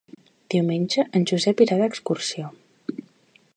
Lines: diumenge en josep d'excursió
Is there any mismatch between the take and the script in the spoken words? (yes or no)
yes